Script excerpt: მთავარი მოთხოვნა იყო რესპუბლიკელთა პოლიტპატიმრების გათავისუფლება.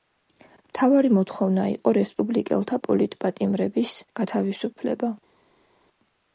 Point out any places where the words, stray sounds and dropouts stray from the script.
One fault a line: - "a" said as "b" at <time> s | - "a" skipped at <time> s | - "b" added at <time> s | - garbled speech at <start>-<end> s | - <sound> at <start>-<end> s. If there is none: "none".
none